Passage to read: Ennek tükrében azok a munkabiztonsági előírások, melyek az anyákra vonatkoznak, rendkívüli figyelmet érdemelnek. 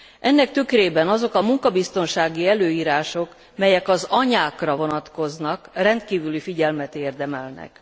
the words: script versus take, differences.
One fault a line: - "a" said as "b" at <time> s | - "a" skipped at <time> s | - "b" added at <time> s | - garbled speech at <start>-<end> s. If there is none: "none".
none